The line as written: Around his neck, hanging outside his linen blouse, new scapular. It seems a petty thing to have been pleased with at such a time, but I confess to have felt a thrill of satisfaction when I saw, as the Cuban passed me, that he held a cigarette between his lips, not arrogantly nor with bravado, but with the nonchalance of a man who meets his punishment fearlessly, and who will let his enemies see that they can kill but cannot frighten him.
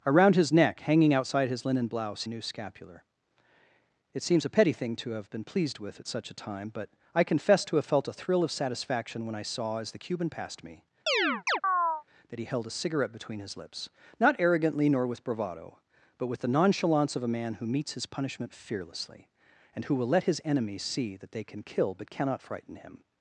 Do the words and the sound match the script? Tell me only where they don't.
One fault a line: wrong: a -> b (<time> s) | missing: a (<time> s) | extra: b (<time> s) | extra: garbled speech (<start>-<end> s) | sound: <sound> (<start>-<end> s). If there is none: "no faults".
sound: chirp (11.1-12.0 s)